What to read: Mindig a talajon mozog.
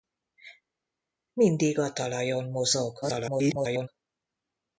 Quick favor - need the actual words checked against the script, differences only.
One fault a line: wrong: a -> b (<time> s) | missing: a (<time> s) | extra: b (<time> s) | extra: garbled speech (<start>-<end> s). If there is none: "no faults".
extra: garbled speech (3.0-3.9 s)